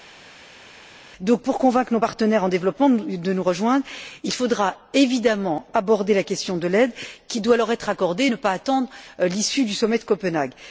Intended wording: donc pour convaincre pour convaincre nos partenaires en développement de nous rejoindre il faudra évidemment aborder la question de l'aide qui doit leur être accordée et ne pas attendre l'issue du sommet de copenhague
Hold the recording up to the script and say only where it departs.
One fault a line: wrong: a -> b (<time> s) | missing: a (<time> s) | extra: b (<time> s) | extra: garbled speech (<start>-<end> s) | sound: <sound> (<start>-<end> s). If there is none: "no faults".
missing: pour convaincre (1.9 s)